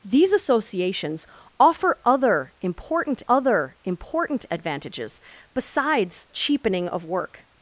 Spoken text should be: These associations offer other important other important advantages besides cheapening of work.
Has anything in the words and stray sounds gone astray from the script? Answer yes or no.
no